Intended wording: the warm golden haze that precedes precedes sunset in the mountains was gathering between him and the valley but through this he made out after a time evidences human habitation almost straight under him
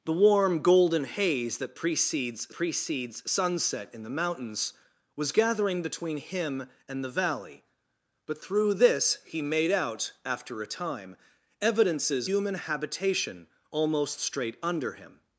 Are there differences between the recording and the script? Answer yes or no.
no